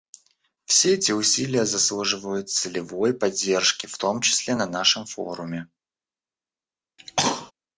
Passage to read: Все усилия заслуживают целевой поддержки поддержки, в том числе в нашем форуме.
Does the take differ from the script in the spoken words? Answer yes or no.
yes